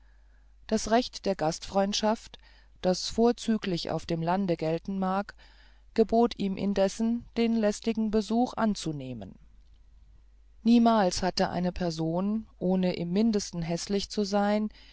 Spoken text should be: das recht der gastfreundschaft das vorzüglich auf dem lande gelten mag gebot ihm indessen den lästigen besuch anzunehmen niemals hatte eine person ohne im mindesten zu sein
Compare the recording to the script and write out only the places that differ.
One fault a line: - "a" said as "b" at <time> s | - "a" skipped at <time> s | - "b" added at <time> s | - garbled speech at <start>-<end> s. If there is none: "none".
- "häßlich" added at 13.6 s